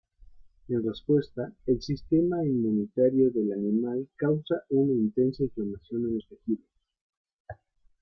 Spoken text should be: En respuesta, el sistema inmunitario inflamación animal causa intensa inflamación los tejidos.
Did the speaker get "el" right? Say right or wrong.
right